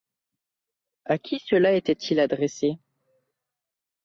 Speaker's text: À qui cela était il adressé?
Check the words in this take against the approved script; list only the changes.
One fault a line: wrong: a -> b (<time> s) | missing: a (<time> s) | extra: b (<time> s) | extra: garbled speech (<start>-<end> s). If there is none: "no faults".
no faults